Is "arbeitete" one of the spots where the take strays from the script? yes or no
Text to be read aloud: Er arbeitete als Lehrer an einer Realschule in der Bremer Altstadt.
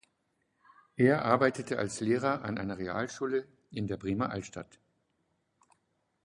no